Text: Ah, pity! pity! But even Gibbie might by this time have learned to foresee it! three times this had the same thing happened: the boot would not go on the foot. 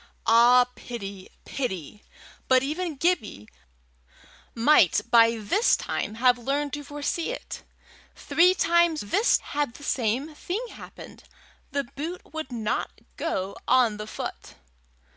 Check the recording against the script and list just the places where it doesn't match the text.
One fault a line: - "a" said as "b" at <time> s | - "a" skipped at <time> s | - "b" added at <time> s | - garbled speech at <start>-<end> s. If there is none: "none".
none